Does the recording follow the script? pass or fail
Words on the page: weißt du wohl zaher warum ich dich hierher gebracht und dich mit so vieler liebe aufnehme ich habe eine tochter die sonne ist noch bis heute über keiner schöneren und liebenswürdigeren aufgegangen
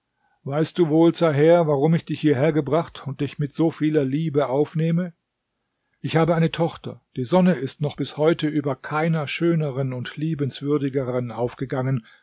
pass